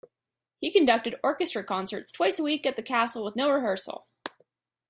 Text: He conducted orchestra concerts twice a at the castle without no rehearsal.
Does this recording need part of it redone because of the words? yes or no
yes